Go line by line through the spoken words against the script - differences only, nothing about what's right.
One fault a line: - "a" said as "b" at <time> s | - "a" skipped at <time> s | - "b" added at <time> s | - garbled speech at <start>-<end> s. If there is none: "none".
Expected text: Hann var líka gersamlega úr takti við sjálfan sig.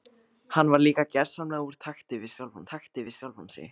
- "takti við sjálfan" added at 2.7 s